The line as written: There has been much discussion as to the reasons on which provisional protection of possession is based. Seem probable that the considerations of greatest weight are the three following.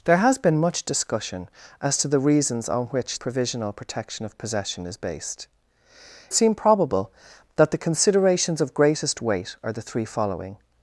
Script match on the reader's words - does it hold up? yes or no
yes